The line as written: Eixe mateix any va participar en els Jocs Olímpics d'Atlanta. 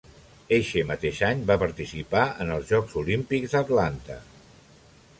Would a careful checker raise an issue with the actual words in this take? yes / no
no